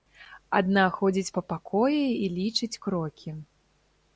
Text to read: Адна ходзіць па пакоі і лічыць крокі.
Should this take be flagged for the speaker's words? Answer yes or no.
no